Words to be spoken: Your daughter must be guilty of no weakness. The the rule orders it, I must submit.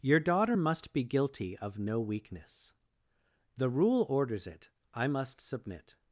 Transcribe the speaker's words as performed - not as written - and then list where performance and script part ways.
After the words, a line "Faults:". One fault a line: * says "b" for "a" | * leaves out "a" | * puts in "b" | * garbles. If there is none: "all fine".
Your daughter must be guilty of no weakness. The rule orders it, I must submit.
Faults:
* leaves out "the"